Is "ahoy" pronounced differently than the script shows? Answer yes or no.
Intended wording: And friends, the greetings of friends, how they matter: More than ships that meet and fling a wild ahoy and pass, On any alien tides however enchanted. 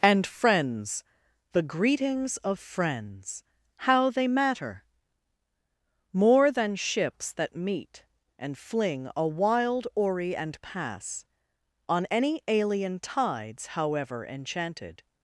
yes